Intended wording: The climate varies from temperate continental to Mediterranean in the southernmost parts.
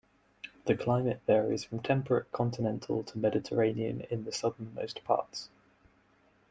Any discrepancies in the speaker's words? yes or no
no